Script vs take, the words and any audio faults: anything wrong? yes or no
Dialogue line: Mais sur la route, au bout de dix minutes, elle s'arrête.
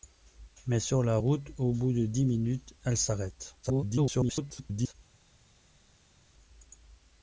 yes